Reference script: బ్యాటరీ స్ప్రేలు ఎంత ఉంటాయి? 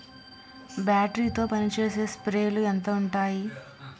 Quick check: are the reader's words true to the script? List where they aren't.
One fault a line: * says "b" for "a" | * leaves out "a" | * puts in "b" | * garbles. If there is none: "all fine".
* puts in "తో పనిచేసే"